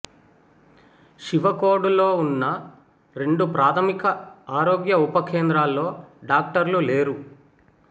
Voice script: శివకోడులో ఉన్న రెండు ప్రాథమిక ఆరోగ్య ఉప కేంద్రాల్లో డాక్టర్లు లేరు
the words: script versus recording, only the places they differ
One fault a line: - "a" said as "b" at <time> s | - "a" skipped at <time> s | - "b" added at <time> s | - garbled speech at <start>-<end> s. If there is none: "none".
none